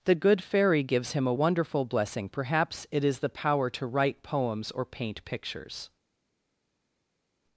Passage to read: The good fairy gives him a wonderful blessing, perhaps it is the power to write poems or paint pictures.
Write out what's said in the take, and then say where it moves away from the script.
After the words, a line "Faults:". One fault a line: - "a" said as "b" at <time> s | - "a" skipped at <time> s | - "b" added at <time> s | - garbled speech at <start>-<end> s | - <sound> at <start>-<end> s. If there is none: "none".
The good fairy gives him a wonderful blessing, perhaps it is the power to write poems or paint pictures.
Faults:
none